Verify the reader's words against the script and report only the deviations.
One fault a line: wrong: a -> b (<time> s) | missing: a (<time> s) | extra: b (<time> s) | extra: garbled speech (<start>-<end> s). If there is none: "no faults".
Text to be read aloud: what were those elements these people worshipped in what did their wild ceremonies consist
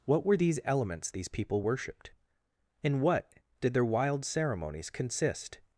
wrong: those -> these (0.4 s)